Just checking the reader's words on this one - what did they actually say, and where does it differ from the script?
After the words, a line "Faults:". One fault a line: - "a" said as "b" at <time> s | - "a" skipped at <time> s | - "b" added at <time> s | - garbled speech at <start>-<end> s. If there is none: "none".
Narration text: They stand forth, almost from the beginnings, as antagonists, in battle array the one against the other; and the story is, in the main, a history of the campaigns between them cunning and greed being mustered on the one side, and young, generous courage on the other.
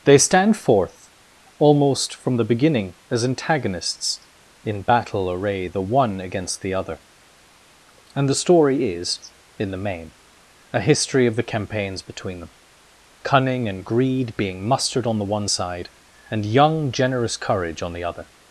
They stand forth, almost from the beginning, as antagonists, in battle array the one against the other; and the story is, in the main, a history of the campaigns between them cunning and greed being mustered on the one side, and young, generous courage on the other.
Faults:
- "beginnings" said as "beginning" at 2.4 s